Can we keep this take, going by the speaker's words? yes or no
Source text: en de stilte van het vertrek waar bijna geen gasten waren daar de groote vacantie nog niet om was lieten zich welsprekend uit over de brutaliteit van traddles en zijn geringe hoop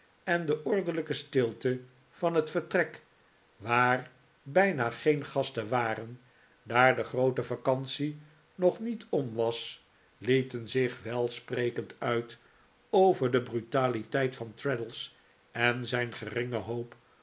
no